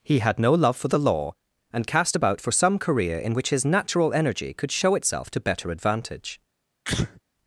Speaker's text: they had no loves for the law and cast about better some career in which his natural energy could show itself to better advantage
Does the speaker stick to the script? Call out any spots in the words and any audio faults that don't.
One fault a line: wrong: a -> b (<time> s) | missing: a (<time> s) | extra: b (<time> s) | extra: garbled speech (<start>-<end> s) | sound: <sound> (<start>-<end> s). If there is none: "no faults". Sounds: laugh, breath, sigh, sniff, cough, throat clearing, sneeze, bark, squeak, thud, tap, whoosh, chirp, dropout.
wrong: they -> he (0.0 s)
wrong: loves -> love (0.5 s)
wrong: better -> for (2.4 s)
sound: sneeze (6.8-7.2 s)